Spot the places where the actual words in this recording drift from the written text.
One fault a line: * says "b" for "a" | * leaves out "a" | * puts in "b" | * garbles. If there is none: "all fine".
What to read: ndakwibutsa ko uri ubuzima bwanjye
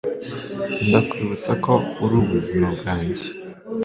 all fine